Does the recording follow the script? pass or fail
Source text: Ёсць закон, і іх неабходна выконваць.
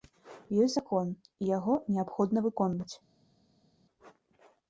fail